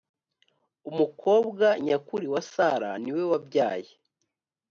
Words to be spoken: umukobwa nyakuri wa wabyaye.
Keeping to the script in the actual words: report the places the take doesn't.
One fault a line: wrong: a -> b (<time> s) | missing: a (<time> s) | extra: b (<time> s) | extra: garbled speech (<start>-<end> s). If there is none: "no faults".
extra: sara niwe (2.5 s)